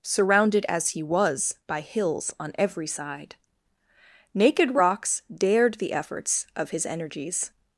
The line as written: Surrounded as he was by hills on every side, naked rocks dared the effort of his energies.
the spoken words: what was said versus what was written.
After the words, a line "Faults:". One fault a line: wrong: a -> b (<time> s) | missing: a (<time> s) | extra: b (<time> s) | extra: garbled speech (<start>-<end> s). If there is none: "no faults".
Surrounded as he was by hills on every side, naked rocks dared the efforts of his energies.
Faults:
wrong: effort -> efforts (5.9 s)